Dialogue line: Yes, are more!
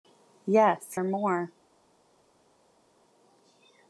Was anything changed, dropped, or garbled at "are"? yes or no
no